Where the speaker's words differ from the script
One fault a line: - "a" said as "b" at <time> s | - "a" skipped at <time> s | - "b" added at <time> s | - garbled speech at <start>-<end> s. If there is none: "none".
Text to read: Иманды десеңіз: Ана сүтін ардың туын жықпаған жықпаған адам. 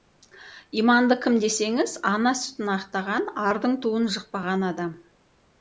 - "кім" added at 1.2 s
- "ақтаған" added at 2.8 s
- "жықпаған" skipped at 4.7 s